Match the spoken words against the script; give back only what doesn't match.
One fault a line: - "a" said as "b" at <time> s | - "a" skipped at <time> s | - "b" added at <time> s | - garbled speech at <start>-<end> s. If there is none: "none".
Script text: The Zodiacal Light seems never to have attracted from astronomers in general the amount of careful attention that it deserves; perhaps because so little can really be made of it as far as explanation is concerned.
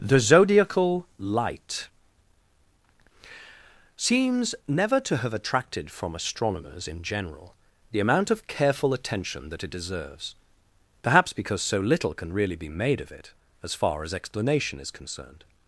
none